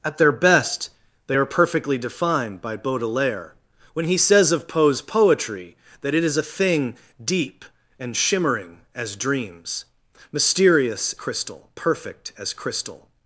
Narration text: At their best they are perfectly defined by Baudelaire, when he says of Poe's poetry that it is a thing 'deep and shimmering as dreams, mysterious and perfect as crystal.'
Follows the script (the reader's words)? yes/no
no